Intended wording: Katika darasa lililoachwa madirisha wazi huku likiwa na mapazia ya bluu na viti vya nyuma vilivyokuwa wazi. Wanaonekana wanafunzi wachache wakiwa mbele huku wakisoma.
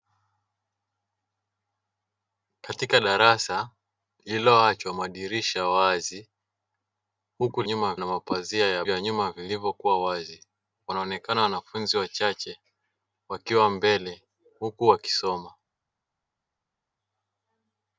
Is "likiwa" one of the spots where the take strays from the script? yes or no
yes